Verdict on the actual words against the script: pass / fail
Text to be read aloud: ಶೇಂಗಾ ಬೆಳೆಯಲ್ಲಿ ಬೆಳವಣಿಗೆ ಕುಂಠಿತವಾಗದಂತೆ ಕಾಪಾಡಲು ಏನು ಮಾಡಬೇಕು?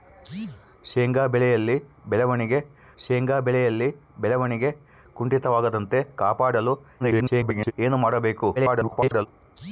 fail